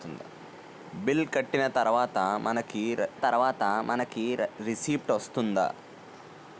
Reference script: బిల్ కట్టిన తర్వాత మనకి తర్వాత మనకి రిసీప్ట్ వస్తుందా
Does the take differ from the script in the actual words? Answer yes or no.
no